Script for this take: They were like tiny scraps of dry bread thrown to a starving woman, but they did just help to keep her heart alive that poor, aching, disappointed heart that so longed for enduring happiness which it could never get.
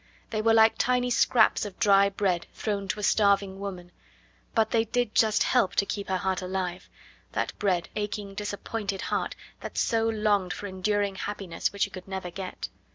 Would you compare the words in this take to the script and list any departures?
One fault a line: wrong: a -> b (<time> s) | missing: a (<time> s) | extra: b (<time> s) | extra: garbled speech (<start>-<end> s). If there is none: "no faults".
wrong: poor -> bread (7.5 s)